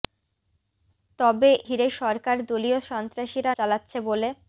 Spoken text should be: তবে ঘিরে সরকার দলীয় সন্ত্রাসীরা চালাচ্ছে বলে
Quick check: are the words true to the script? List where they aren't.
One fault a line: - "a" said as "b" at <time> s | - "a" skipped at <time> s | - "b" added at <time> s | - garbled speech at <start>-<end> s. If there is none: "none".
none